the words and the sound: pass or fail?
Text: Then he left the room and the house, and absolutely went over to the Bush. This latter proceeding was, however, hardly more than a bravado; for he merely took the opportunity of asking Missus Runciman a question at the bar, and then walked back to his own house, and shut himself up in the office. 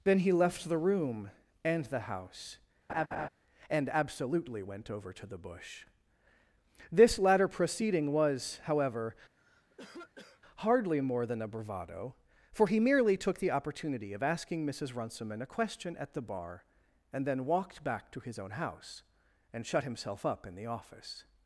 fail